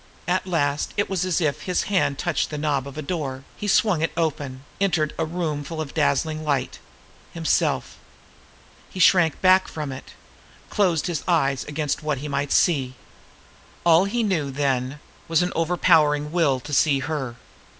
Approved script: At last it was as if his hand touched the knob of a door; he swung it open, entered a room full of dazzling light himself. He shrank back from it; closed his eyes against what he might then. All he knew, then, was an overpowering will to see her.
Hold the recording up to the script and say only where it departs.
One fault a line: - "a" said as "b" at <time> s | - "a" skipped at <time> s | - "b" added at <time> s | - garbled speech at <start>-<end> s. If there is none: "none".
- "then" said as "see" at 12.5 s